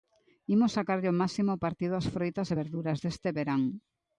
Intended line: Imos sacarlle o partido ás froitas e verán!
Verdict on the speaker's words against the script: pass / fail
fail